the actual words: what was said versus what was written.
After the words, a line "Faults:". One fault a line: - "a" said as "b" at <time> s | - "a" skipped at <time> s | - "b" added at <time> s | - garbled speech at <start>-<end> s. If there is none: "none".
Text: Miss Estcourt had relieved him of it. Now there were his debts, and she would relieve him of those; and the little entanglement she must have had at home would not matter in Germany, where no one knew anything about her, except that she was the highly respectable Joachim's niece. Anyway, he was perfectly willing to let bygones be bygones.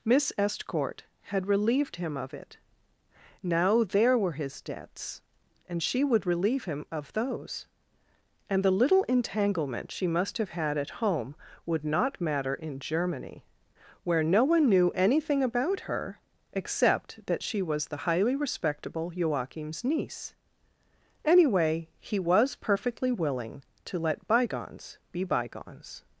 Miss Estcourt had relieved him of it. Now there were his debts, and she would relieve him of those; and the little entanglement she must have had at home would not matter in Germany, where no one knew anything about her, except that she was the highly respectable Joachim's niece. Anyway, he was perfectly willing to let bygones be bygones.
Faults:
none